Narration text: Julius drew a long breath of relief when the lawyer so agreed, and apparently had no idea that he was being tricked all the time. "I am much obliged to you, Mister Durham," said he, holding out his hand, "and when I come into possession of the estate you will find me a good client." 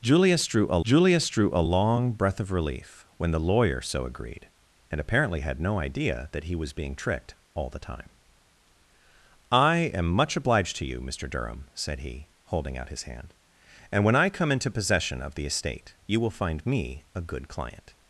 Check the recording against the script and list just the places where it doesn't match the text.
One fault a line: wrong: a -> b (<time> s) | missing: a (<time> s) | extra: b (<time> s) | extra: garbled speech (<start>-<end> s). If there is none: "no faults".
extra: julius drew a (0.8 s)